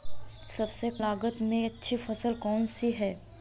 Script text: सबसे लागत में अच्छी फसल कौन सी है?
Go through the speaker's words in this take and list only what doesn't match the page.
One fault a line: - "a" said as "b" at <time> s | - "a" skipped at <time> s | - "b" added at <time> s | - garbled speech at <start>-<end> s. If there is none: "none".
none